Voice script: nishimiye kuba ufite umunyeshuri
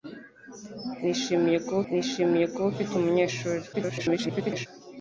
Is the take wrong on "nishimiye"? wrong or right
right